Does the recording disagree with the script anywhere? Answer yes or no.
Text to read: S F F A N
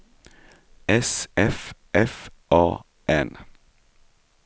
no